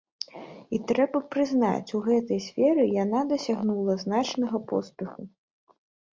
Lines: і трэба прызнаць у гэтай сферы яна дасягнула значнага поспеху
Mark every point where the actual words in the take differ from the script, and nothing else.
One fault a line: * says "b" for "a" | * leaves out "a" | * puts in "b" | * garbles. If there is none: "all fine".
all fine